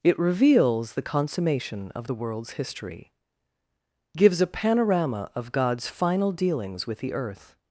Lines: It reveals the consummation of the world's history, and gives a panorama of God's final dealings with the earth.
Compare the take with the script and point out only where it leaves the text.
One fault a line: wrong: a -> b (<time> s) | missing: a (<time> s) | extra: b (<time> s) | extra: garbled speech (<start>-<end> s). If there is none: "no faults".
missing: and (3.1 s)